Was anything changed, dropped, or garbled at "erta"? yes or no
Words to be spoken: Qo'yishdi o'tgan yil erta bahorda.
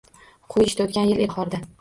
yes